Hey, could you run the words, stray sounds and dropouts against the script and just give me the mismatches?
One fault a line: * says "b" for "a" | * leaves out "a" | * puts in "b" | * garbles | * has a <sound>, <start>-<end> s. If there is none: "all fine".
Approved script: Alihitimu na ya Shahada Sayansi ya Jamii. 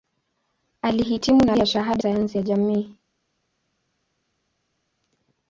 all fine